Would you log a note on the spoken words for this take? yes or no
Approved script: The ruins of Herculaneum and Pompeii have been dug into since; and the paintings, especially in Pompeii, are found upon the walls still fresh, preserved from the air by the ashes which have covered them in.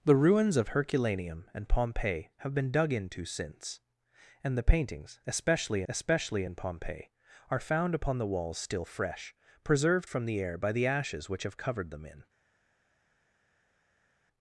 yes